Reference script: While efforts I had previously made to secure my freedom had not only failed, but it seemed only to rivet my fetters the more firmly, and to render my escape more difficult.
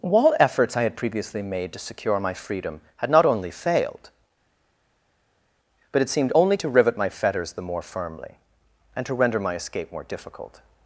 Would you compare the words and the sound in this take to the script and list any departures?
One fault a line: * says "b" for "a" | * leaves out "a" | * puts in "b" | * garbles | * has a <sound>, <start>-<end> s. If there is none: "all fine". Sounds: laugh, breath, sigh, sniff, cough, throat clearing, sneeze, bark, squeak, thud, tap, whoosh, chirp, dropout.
all fine